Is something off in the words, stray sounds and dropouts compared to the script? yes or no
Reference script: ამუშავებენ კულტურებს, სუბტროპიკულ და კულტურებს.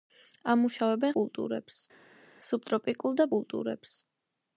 no